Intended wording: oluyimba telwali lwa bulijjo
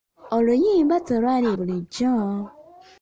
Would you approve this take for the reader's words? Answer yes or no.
no